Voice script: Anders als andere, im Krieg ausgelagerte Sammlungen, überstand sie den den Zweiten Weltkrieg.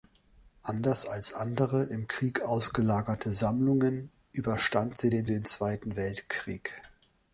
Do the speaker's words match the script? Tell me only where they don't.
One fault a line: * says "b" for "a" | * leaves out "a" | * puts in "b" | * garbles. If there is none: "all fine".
all fine